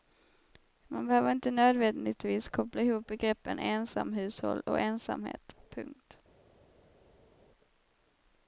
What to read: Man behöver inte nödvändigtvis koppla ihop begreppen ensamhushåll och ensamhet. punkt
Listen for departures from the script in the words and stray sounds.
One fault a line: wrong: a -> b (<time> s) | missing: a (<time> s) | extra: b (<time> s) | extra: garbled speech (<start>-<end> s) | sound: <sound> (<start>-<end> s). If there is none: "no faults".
no faults